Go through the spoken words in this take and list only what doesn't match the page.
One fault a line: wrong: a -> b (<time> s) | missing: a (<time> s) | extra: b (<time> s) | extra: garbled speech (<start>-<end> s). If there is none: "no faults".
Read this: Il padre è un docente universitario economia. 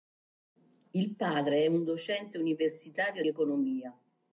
no faults